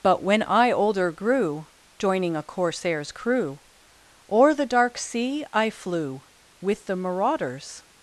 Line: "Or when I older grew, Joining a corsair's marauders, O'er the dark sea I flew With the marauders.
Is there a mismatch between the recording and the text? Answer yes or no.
yes